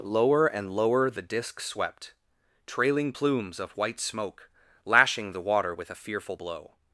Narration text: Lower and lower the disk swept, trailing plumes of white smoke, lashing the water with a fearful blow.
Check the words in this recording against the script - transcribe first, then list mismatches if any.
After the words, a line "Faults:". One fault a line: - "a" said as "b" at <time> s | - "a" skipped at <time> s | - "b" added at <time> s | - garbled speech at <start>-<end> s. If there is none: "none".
Lower and lower the disk swept, trailing plumes of white smoke, lashing the water with a fearful blow.
Faults:
none